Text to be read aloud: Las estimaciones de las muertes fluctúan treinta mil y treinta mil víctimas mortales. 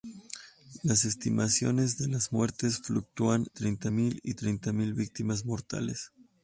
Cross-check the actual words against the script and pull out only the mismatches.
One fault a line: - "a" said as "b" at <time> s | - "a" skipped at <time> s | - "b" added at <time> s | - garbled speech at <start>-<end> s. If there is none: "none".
none